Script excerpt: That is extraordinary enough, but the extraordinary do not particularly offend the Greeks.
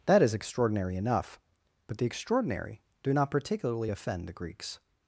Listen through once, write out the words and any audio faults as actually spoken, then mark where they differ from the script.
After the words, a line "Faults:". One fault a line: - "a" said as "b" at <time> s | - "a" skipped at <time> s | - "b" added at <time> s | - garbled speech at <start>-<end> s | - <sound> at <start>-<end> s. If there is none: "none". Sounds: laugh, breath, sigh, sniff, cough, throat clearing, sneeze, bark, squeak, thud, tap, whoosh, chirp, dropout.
That is extraordinary enough, but the extraordinary do not particularly offend the Greeks.
Faults:
none